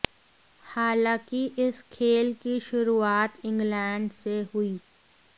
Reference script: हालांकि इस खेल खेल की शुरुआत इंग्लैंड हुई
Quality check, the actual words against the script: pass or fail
fail